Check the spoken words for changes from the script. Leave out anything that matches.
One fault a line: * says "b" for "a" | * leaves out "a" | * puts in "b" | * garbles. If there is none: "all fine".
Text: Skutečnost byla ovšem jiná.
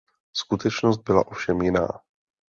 all fine